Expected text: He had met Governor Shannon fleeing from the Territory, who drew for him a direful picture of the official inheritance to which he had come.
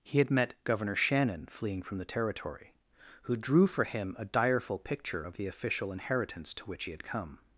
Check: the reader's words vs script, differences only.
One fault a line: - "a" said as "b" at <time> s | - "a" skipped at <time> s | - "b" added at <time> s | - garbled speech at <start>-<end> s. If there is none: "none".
none